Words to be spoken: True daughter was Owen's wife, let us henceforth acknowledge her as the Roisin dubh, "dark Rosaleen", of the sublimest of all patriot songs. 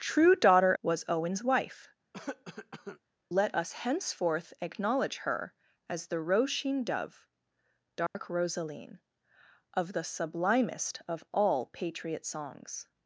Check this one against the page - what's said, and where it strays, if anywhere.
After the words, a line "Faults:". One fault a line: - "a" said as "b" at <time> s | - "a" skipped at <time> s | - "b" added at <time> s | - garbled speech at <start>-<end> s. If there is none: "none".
True daughter was Owen's wife, let us henceforth acknowledge her as the Roisin dubh, "dark Rosaleen", of the sublimest of all patriot songs.
Faults:
none